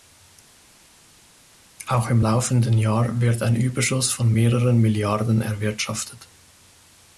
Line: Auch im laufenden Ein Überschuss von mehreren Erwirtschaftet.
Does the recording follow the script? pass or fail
fail